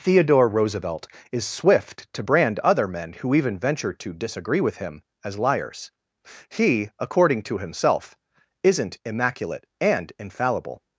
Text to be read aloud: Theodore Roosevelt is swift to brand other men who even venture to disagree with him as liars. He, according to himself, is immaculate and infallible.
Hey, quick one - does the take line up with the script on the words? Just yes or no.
no